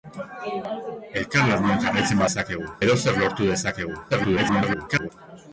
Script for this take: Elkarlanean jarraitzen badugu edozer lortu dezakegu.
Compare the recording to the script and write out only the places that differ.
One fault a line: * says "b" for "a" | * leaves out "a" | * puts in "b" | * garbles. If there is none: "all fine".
* says "dezakegu" for "badugu"
* garbles